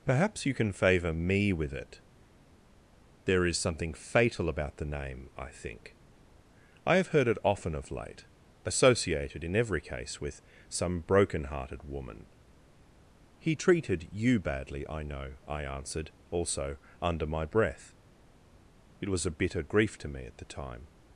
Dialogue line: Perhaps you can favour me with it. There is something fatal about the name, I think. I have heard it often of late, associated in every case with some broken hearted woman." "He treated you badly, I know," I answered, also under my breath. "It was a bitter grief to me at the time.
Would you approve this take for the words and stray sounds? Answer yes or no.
yes